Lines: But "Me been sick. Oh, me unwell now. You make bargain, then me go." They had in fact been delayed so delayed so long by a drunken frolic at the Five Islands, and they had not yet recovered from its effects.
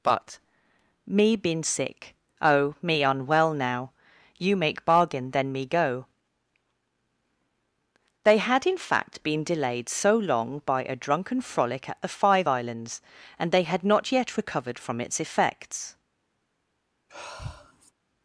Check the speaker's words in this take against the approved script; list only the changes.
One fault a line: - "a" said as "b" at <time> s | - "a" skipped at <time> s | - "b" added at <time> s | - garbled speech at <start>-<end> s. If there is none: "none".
- "delayed so" skipped at 10.2 s